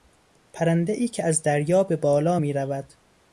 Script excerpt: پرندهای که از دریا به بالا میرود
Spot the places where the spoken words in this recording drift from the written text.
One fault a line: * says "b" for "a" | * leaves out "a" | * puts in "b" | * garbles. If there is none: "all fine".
all fine